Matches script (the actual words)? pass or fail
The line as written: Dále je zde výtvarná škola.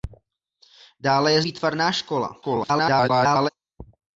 fail